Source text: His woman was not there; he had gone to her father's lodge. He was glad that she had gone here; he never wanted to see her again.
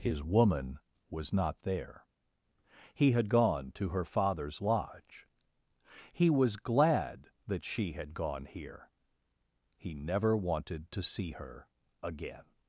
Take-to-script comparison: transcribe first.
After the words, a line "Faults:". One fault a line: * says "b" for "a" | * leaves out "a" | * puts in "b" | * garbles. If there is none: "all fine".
His woman was not there; he had gone to her father's lodge. He was glad that she had gone here; he never wanted to see her again.
Faults:
all fine